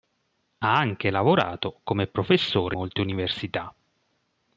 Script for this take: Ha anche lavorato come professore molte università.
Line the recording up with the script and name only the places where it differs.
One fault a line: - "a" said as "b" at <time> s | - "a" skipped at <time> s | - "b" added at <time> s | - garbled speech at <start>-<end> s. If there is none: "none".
none